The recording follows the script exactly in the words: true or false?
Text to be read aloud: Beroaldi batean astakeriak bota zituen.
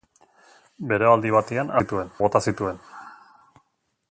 false